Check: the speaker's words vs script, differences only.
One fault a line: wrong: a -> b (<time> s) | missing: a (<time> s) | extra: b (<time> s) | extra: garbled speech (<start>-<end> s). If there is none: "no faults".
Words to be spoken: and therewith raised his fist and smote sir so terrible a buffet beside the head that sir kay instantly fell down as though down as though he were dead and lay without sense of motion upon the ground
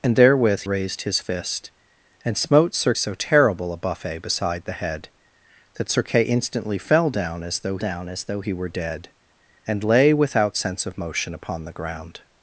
no faults